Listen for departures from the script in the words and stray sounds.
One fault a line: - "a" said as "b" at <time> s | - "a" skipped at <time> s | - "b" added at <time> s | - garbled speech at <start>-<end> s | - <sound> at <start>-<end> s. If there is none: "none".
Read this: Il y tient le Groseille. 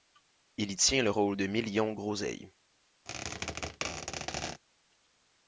- "rôle de Million" added at 1.1 s
- squeak at 3.1-4.6 s